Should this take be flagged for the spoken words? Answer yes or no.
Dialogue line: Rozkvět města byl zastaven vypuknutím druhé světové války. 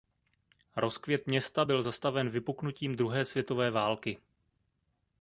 no